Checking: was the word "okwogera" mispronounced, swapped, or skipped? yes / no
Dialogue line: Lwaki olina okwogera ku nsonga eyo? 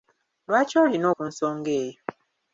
yes